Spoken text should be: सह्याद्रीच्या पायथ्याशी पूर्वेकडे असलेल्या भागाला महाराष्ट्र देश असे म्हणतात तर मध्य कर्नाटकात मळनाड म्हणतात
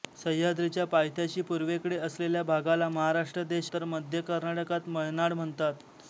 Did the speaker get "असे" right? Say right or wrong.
wrong